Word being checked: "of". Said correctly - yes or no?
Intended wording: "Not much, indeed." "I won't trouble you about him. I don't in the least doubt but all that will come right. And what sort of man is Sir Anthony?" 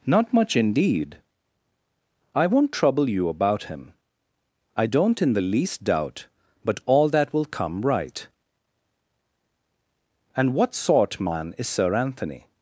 no